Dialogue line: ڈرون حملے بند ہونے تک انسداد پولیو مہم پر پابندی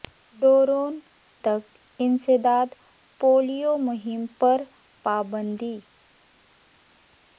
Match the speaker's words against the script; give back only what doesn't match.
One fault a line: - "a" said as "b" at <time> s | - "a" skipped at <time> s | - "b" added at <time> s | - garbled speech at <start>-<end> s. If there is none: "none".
- "حملے بند ہونے" skipped at 0.9 s